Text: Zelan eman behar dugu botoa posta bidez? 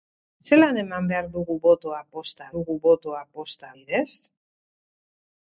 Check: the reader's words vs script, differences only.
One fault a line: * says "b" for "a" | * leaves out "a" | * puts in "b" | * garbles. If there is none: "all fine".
* puts in "dugu botoa posta"